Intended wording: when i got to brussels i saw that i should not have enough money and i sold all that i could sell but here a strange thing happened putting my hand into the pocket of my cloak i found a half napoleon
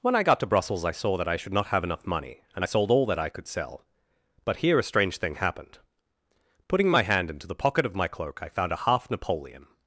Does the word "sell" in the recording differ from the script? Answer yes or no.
no